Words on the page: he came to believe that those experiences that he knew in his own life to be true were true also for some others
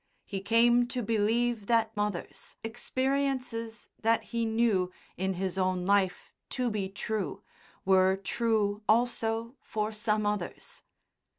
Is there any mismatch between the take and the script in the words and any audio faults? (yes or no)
yes